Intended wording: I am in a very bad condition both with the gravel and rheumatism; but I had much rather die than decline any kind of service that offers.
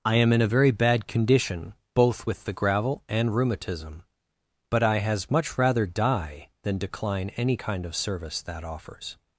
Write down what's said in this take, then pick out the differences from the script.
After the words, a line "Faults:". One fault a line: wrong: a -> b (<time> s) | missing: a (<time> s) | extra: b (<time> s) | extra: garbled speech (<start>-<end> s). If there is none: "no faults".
I am in a very bad condition both with the gravel and rheumatism; but I has much rather die than decline any kind of service that offers.
Faults:
wrong: had -> has (5.0 s)